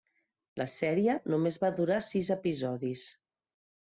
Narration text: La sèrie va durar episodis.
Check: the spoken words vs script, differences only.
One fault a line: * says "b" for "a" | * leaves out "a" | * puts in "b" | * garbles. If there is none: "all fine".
* puts in "només"
* puts in "sis"